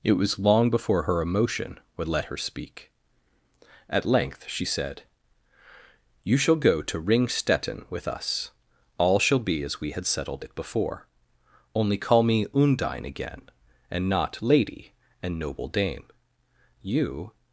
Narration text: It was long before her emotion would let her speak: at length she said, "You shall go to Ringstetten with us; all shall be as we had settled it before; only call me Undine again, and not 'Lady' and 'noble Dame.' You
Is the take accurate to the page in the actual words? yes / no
yes